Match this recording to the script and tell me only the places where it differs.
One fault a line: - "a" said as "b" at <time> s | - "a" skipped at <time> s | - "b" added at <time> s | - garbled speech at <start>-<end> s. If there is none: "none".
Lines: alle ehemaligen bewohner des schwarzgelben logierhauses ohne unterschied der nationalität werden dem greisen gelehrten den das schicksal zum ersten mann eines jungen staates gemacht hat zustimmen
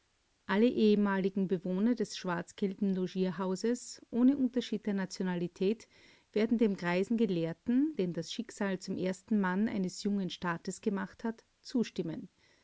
none